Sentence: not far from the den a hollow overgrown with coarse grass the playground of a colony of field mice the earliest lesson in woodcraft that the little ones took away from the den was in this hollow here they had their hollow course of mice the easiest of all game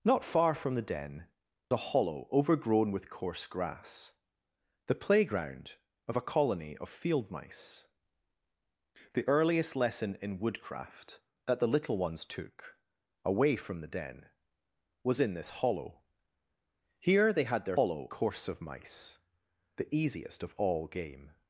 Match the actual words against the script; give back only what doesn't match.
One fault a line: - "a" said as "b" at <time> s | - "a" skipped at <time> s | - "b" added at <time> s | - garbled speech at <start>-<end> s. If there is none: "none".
none